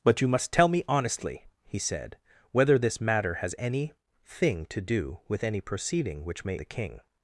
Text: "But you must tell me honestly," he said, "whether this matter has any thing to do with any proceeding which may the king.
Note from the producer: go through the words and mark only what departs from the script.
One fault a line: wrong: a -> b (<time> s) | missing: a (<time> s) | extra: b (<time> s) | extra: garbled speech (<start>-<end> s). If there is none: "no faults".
no faults